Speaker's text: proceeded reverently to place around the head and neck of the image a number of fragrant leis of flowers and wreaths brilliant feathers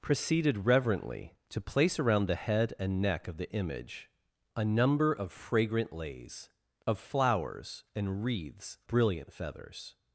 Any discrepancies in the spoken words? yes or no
no